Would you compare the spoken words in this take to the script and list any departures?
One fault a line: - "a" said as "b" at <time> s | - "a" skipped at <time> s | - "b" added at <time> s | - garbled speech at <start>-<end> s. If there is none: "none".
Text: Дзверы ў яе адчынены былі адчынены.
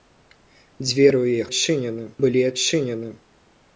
none